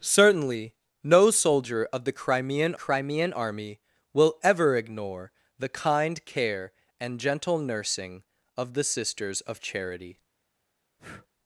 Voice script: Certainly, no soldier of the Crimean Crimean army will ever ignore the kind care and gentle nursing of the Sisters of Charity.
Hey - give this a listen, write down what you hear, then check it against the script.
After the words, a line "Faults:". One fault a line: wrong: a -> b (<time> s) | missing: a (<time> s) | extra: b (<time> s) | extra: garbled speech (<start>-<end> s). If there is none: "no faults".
Certainly, no soldier of the Crimean Crimean army will ever ignore the kind care and gentle nursing of the Sisters of Charity.
Faults:
no faults